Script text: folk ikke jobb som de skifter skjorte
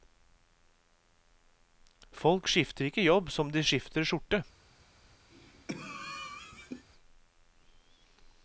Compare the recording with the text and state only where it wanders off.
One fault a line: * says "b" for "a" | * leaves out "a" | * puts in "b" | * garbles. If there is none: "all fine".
* puts in "skifter"